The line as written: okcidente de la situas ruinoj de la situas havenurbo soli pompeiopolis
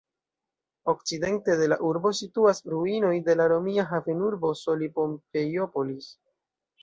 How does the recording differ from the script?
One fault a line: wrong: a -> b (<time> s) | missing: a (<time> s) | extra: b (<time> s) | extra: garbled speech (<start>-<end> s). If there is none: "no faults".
extra: urbo (1.9 s)
wrong: situas -> romia (3.5 s)